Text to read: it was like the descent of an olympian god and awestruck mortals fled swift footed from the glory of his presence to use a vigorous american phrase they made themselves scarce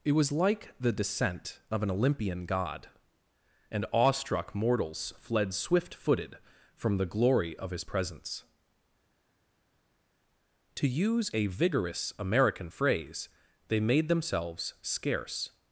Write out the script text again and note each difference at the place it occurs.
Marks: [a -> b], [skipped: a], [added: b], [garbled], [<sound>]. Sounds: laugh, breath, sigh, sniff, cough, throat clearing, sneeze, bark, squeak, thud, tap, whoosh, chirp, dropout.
it was like the descent of an olympian god and awestruck mortals fled swift footed from the glory of his presence to use a vigorous american phrase they made themselves scarce